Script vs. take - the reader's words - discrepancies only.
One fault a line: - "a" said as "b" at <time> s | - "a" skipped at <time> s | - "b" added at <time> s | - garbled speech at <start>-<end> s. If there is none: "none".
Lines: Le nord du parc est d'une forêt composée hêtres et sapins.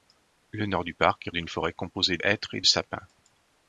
none